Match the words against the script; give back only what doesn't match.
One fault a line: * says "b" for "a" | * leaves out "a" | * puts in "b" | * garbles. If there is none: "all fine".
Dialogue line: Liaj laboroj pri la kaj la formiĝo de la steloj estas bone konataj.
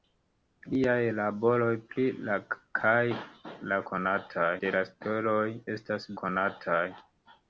* says "konataj" for "formiĝo"
* leaves out "bone"